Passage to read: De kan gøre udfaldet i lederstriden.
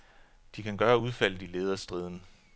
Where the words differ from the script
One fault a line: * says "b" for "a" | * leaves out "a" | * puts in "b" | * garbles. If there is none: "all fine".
all fine